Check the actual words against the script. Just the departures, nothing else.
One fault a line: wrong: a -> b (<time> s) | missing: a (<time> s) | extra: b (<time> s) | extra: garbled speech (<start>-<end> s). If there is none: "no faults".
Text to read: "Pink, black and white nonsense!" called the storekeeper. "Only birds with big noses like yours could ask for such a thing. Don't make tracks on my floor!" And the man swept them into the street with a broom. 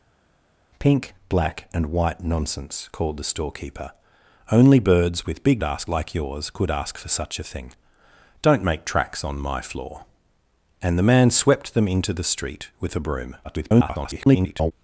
wrong: noses -> ask (5.6 s)
extra: garbled speech (13.4-14.7 s)